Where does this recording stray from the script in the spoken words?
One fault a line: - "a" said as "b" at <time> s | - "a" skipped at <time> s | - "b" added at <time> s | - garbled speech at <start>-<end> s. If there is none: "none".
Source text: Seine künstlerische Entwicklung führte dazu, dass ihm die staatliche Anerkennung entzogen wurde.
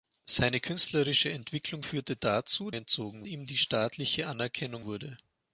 - "dass" said as "entzogen" at 2.7 s
- "entzogen" skipped at 4.9 s